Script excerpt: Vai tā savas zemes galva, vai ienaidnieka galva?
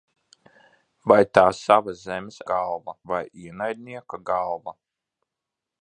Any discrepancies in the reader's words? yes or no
no